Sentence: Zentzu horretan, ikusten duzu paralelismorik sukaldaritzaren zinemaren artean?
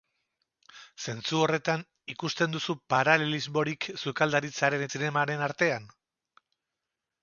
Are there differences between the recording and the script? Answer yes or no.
no